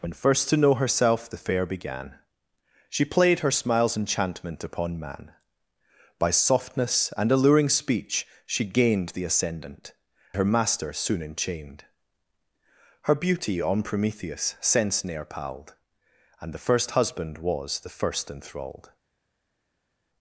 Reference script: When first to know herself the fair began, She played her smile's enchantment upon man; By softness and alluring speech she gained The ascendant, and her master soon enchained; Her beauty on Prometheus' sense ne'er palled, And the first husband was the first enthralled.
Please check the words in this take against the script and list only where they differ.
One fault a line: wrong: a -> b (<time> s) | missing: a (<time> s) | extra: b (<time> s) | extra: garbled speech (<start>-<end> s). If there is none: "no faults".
missing: and (9.9 s)